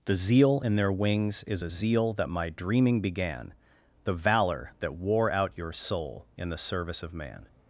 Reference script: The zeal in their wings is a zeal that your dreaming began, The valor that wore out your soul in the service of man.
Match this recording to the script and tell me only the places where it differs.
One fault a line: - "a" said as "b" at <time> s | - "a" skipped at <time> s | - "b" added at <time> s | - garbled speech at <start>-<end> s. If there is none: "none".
- "your" said as "my" at 2.3 s